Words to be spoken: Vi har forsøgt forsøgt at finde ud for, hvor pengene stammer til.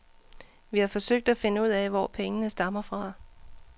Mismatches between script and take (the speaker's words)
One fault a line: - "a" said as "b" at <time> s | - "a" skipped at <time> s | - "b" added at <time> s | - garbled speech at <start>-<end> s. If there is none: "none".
- "forsøgt" skipped at 1.3 s
- "for" said as "af" at 1.7 s
- "til" said as "fra" at 2.8 s